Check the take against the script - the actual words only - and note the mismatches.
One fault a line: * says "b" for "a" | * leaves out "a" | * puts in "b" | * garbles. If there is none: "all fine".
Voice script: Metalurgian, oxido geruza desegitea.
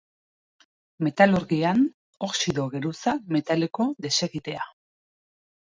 * puts in "metaliko"